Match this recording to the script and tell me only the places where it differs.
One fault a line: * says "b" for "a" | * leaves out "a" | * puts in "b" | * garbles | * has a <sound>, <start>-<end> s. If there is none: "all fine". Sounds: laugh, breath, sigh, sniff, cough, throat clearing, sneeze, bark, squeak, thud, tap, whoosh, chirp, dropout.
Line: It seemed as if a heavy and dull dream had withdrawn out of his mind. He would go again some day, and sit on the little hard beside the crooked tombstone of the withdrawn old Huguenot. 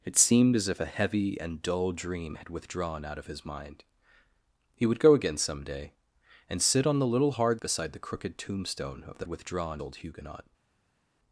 all fine